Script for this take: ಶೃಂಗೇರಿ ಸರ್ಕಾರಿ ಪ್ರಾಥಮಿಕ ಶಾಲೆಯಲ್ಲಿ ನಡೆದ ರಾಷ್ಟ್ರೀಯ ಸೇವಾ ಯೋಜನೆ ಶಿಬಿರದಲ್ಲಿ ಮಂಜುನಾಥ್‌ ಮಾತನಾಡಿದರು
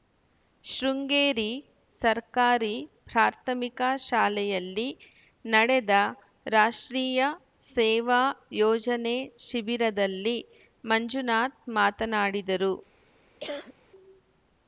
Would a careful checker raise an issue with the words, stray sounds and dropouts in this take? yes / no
yes